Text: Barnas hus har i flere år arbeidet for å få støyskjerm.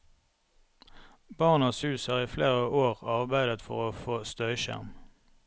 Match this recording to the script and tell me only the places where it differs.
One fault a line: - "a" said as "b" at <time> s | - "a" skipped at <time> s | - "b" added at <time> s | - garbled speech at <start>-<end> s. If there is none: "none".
none